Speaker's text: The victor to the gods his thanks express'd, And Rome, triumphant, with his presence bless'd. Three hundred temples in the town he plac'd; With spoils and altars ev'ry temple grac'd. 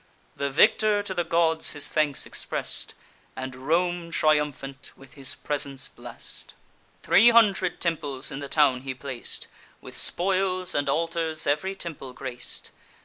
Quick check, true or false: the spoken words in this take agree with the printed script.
true